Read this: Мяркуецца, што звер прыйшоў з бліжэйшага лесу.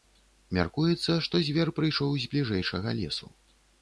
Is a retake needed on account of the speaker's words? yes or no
no